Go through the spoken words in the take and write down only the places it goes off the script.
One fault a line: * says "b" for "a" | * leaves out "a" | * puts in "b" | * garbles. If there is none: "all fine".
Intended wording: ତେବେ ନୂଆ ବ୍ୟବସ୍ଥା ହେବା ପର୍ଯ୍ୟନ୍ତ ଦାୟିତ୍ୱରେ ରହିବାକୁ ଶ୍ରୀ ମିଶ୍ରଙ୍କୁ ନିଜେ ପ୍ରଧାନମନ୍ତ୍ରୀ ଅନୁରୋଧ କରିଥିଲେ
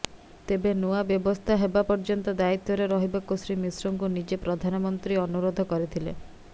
all fine